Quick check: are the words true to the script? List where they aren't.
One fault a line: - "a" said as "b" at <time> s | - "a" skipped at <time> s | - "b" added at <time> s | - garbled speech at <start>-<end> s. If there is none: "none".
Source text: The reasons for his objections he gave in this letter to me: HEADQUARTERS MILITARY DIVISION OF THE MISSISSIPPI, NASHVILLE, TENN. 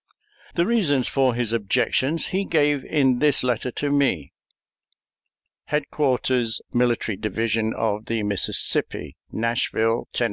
none